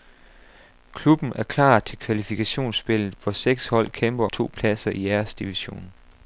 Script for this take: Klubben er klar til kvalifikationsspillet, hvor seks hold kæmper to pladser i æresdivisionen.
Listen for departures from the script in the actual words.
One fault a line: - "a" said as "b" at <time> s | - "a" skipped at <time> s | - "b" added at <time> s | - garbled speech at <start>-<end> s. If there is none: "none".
none